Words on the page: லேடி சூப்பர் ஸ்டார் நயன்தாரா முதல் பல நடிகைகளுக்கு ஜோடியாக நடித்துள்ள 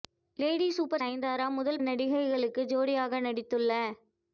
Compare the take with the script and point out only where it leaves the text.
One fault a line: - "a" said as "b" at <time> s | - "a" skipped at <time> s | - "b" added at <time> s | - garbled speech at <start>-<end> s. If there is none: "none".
- "ஸ்டார்" skipped at 1.0 s
- "பல" skipped at 1.8 s